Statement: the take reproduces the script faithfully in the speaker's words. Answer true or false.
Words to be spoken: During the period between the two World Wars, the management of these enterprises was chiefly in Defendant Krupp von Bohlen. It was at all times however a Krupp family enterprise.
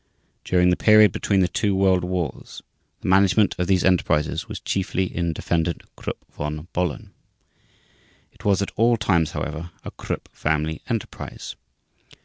true